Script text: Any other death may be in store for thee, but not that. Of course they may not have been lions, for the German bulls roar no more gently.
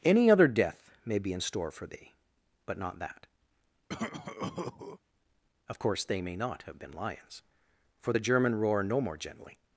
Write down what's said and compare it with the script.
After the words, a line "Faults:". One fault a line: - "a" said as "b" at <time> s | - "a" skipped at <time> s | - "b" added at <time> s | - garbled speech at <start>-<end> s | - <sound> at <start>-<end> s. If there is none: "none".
Any other death may be in store for thee, but not that. Of course they may not have been lions, for the German roar no more gently.
Faults:
- cough at 3.9-5.0 s
- "bulls" skipped at 8.6 s